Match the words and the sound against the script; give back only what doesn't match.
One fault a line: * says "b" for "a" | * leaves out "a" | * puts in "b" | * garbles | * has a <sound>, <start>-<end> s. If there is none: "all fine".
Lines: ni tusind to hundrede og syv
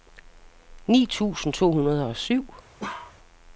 * has a bark, 2.8-3.2 s